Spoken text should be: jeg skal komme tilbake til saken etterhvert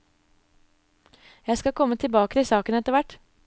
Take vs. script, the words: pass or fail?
pass